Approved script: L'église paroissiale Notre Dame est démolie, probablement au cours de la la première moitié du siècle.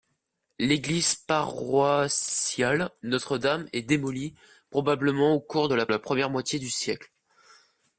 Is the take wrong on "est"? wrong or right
right